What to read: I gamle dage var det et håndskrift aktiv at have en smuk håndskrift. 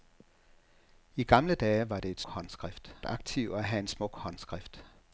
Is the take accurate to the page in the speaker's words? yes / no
yes